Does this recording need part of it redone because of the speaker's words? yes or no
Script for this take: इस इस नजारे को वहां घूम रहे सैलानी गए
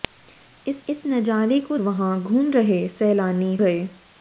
no